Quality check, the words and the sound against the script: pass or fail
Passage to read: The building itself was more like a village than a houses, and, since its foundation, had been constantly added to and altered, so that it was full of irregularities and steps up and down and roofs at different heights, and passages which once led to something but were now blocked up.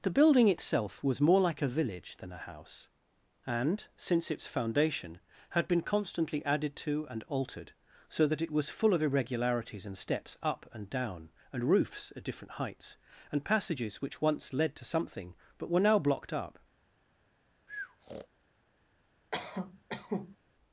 fail